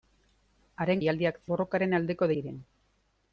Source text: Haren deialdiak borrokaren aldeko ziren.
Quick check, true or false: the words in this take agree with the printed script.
true